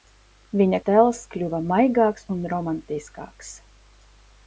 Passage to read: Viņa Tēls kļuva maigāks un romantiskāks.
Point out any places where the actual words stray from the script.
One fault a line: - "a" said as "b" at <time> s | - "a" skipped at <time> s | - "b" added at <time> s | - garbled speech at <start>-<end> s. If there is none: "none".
none